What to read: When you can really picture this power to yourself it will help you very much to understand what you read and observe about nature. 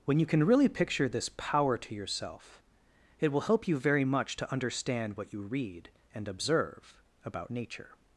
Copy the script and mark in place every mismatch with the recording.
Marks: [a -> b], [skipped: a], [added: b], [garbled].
When you can really picture this power to yourself it will help you very much to understand what you read and observe about nature.